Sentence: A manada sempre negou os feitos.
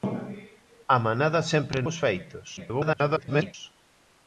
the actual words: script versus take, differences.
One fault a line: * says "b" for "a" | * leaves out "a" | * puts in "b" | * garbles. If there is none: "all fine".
* leaves out "negou"
* garbles